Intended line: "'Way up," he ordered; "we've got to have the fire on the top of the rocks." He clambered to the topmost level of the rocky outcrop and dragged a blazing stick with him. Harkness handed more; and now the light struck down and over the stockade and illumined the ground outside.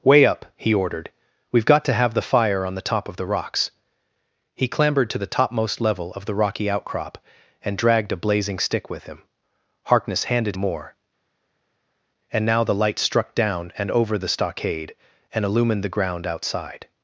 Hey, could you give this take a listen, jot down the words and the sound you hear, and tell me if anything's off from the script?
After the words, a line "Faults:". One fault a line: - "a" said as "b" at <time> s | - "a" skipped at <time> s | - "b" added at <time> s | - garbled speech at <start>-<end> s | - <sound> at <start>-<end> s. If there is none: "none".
"'Way up," he ordered; "we've got to have the fire on the top of the rocks." He clambered to the topmost level of the rocky outcrop and dragged a blazing stick with him. Harkness handed more; and now the light struck down and over the stockade and illumined the ground outside.
Faults:
none